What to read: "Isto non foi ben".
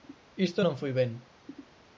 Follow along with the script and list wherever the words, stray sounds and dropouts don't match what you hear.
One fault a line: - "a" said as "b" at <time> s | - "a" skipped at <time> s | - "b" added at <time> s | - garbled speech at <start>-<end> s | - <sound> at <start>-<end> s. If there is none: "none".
none